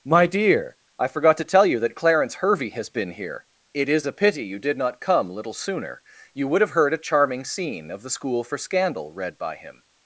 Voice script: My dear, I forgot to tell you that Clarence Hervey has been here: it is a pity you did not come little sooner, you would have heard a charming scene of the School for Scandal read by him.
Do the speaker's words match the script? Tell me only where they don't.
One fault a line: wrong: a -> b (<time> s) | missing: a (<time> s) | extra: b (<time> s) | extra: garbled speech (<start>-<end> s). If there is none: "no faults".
no faults